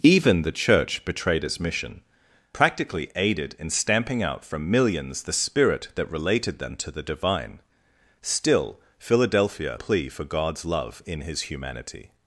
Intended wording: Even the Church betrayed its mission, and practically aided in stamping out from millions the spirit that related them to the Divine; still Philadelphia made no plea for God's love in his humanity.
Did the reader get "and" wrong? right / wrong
wrong